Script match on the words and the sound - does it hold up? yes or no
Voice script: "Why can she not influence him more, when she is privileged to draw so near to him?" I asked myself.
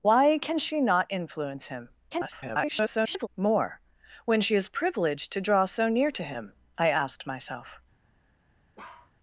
no